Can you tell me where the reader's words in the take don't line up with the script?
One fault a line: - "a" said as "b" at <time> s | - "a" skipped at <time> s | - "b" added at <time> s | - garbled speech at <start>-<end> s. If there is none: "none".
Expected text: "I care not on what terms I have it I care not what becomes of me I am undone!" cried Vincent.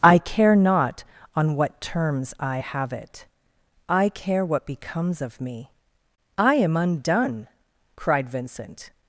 - "not" skipped at 4.5 s